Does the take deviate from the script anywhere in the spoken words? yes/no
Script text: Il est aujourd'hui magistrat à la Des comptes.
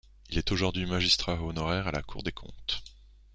yes